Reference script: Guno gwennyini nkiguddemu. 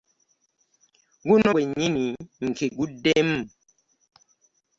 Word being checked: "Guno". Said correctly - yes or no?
yes